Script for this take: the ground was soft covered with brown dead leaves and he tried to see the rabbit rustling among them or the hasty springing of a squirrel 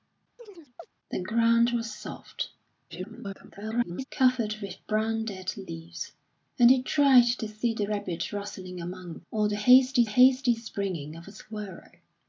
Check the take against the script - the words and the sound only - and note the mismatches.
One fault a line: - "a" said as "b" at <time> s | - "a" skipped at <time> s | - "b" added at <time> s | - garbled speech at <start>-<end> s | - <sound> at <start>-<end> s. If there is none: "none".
- chirp at 0.4-0.9 s
- garbled speech at 2.9-4.1 s
- "them" skipped at 9.2 s
- "hasty" added at 10.1 s